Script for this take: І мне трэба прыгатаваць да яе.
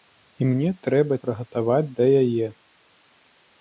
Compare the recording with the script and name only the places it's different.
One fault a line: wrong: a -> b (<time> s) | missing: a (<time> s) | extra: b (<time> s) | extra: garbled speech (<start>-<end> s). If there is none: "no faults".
no faults